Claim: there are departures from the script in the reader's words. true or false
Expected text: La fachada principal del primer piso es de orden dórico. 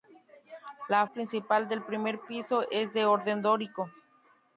true